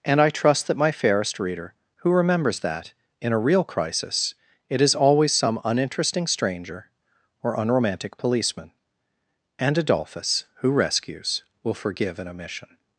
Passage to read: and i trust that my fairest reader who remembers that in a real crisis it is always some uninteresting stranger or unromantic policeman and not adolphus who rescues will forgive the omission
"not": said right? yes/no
no